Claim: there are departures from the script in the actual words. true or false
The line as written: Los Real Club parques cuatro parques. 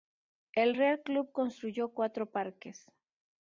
true